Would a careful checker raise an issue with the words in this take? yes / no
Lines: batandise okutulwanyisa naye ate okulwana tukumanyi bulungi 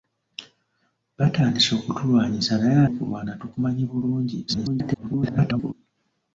yes